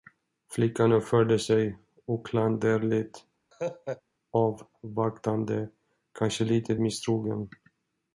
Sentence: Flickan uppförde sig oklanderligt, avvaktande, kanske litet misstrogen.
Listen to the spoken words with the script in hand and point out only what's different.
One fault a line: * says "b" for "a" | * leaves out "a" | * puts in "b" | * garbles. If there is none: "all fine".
all fine